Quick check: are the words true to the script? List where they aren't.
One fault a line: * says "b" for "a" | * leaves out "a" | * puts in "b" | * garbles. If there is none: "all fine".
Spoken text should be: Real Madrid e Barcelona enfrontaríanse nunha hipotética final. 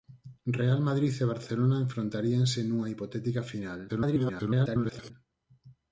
* garbles